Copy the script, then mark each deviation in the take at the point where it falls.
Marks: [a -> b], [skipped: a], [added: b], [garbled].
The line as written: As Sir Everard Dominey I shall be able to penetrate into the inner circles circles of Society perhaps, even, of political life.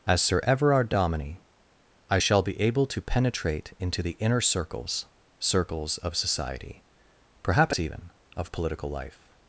As Sir Everard Dominey I shall be able to penetrate into the inner circles circles of Society perhaps, even, of political life.